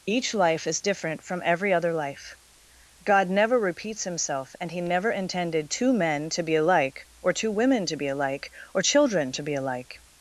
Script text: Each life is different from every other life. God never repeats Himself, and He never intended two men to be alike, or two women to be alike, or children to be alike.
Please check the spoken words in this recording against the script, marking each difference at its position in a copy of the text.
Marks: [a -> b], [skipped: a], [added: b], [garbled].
Each life is different from every other life. God never repeats Himself, and He never intended two men to be alike, or two women to be alike, or children to be alike.